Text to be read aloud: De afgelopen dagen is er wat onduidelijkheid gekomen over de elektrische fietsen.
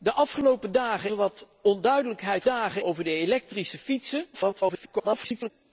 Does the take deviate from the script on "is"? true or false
true